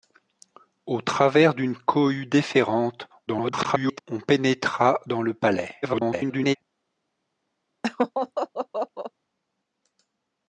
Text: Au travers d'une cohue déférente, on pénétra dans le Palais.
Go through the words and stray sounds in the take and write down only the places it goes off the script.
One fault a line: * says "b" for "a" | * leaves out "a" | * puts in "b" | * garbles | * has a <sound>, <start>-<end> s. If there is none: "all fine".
* garbles
* garbles
* has a laugh, 7.8-9.1 s